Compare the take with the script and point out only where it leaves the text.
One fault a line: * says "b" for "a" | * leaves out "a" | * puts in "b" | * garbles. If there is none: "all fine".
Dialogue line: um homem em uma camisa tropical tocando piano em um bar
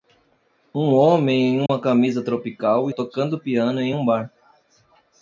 all fine